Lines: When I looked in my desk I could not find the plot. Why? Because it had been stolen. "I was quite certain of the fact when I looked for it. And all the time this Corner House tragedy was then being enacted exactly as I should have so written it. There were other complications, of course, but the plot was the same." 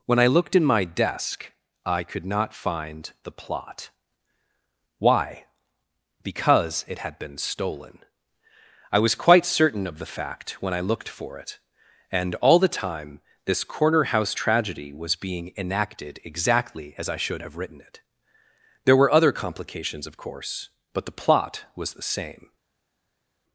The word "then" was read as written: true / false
false